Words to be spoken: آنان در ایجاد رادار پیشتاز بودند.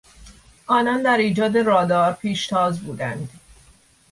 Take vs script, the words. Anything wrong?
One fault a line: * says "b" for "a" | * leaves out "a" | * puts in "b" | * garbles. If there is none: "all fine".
all fine